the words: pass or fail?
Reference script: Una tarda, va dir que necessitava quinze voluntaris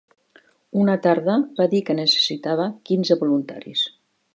pass